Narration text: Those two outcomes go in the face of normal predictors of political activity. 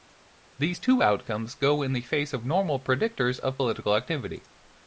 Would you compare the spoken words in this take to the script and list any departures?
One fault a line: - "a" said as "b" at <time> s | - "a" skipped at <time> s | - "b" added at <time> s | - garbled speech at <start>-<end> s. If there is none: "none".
- "Those" said as "These" at 0.6 s